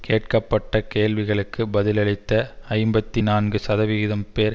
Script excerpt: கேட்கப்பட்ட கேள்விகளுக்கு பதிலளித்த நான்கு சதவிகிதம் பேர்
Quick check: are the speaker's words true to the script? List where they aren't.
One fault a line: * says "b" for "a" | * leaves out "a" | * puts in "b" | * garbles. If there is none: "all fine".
* puts in "ஐம்பத்தி"